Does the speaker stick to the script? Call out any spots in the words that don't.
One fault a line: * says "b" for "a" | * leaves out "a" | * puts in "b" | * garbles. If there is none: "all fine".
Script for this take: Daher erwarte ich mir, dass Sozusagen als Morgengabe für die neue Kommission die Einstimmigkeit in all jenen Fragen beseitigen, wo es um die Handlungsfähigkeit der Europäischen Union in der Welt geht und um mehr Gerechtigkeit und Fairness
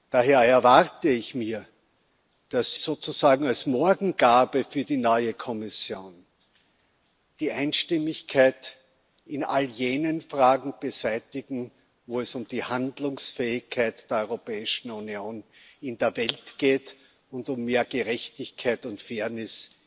all fine